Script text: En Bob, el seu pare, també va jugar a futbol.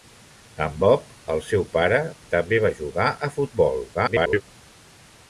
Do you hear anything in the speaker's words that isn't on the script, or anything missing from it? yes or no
yes